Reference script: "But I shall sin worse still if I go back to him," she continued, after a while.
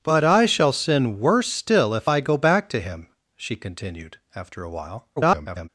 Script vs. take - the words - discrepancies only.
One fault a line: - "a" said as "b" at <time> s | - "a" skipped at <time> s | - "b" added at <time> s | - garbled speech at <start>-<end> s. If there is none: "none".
- garbled speech at 5.2-5.7 s